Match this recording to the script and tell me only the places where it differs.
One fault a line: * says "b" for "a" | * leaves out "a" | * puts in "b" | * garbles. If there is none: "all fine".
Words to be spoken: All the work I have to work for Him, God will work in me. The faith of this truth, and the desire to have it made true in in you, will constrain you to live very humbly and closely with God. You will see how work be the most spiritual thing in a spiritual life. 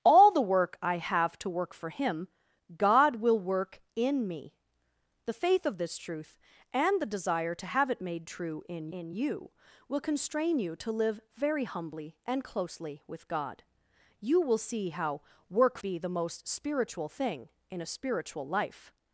all fine